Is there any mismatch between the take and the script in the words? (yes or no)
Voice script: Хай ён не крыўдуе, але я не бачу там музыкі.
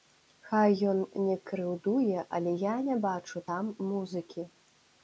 no